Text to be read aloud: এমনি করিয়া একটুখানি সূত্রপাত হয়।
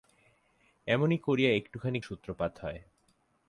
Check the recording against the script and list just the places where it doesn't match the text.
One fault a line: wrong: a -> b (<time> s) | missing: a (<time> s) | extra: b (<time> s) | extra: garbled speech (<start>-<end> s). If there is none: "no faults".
no faults